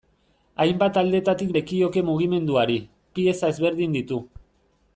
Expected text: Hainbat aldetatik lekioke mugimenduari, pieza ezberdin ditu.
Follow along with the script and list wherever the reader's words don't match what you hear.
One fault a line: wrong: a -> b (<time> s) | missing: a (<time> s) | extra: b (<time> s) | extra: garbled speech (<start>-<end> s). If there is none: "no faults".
no faults